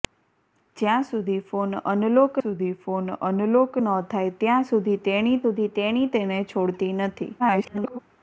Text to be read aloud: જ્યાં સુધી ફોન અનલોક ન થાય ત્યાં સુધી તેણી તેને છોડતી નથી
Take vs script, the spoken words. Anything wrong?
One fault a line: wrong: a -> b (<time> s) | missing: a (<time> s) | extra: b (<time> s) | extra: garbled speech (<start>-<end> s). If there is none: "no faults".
extra: સુધી ફોન અનલોક (2.4 s)
extra: સુધી તેણી (5.4 s)
extra: garbled speech (7.4-8.0 s)